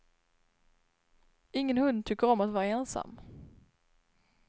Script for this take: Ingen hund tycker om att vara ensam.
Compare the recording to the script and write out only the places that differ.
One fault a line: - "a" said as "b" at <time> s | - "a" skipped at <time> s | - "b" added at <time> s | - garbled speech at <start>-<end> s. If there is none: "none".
none